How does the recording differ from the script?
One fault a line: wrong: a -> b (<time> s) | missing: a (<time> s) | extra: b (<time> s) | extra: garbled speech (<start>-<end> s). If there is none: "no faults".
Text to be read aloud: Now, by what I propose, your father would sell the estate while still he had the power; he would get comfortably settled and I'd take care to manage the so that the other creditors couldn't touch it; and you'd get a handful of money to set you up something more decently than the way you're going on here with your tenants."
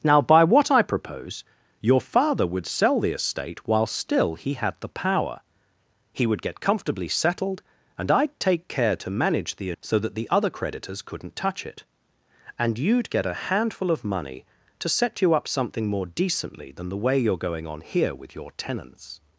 no faults